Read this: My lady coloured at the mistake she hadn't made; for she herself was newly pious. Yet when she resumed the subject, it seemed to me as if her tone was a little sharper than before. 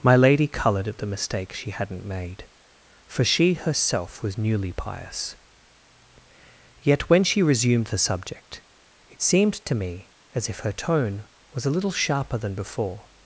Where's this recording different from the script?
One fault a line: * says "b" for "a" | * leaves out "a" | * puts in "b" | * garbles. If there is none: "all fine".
all fine